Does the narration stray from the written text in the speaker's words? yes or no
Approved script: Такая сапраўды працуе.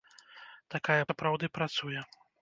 no